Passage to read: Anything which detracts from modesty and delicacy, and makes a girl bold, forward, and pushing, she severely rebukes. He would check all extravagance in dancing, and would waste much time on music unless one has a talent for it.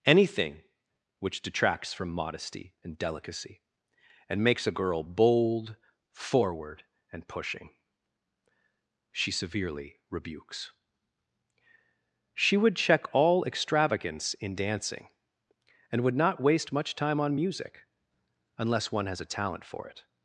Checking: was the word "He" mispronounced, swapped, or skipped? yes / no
yes